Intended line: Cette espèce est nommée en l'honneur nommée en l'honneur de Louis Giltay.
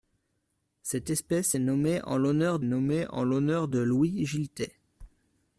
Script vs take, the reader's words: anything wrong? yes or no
no